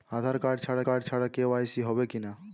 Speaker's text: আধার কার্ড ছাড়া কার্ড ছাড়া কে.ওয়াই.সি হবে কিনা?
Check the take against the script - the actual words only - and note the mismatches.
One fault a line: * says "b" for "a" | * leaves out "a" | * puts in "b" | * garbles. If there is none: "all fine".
all fine